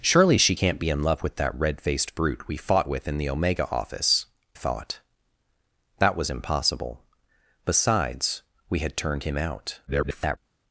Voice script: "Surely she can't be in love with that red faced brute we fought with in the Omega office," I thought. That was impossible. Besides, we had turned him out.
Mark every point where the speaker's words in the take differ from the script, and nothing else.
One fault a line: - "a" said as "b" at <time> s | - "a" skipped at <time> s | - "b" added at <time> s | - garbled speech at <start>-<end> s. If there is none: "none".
- "I" skipped at 4.3 s
- garbled speech at 9.9-10.4 s